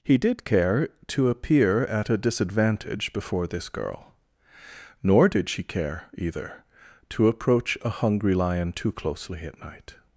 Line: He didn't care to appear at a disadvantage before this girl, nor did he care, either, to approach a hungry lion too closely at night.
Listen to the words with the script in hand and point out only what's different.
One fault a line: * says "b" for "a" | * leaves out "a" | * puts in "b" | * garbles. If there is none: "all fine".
* says "did" for "didn't"
* says "she" for "he"